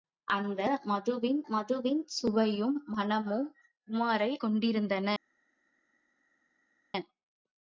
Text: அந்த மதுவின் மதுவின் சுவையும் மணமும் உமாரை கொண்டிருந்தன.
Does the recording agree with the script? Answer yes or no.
yes